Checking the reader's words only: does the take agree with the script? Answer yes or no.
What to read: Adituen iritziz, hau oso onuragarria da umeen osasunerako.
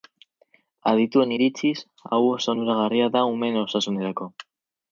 yes